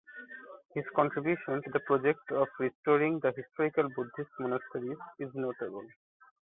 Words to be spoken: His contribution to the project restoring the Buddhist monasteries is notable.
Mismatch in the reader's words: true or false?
true